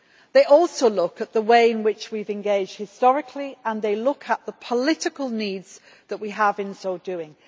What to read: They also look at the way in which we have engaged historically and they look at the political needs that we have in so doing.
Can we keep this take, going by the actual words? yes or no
yes